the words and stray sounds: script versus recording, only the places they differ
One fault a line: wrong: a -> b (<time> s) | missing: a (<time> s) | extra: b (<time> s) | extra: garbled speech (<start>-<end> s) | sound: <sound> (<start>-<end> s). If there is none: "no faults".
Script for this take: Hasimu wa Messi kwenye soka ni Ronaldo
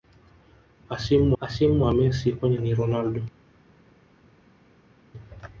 extra: hasimu (1.4 s)
missing: soka (2.6 s)